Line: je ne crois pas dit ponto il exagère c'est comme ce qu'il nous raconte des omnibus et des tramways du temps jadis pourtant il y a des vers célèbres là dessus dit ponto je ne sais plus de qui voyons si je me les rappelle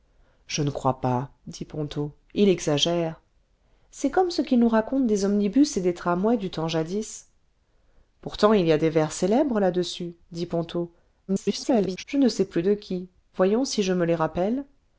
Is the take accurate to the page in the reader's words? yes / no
no